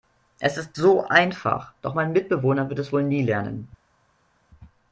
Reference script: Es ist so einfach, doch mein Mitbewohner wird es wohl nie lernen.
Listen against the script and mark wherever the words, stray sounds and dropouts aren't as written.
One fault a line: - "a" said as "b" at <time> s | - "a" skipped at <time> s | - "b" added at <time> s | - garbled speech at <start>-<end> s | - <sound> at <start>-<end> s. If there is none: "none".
none